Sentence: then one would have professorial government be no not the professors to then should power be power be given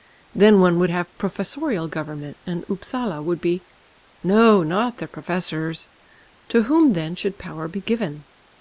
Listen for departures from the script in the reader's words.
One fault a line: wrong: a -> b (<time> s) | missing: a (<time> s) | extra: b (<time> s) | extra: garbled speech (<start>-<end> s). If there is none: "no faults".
extra: and upsala would (2.5 s)
extra: whom (6.6 s)
missing: power be (7.8 s)